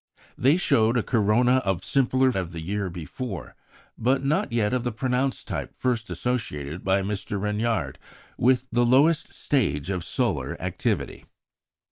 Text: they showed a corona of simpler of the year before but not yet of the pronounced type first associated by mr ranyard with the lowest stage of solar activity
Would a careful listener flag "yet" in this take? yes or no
no